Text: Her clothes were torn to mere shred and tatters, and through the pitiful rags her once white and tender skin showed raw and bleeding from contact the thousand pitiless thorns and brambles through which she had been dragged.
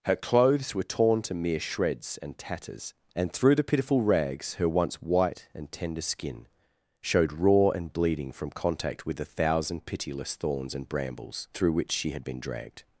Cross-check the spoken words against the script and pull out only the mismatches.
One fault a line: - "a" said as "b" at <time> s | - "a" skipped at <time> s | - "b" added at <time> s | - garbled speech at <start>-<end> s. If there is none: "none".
- "shred" said as "shreds" at 1.6 s
- "with" added at 9.1 s